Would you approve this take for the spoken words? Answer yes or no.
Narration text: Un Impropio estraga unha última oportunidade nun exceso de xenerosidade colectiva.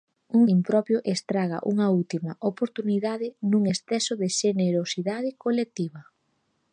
yes